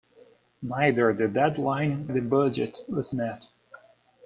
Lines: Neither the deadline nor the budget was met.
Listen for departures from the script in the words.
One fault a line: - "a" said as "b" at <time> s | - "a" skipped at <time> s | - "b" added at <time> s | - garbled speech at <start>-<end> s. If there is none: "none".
- "nor" skipped at 2.1 s